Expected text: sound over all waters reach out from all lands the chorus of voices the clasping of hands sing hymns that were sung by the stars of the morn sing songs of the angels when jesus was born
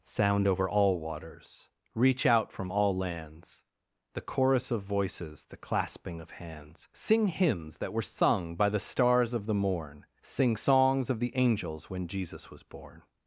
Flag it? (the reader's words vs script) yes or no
no